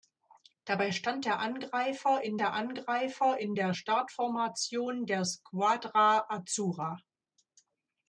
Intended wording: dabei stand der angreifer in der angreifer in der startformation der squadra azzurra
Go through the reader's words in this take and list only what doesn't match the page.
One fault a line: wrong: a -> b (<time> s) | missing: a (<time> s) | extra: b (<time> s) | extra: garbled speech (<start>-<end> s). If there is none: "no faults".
no faults